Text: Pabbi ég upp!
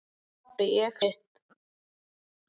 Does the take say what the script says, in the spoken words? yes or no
yes